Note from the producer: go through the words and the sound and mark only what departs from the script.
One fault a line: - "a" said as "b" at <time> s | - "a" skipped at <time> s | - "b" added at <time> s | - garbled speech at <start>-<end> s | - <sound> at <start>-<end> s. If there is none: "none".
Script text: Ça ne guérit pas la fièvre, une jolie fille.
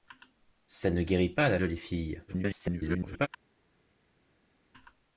- "fièvre une" skipped at 1.6 s
- garbled speech at 2.3-3.3 s